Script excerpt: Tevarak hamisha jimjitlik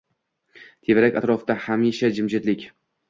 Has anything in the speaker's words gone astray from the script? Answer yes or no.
yes